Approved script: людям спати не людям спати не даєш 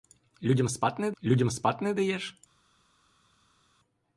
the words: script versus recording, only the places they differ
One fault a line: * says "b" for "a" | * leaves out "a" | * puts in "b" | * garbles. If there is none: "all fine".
all fine